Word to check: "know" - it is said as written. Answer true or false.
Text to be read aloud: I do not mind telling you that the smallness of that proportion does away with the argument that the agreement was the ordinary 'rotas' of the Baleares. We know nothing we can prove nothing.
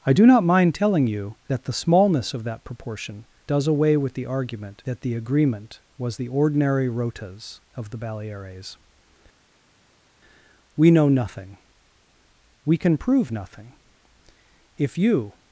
true